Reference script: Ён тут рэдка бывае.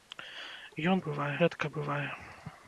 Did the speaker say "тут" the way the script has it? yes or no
no